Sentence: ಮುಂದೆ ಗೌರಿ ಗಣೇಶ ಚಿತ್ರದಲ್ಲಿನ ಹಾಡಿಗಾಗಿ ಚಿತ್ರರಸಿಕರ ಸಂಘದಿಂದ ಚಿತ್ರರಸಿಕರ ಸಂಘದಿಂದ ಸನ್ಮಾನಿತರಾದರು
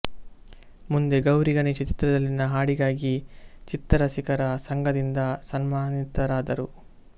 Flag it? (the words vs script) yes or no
yes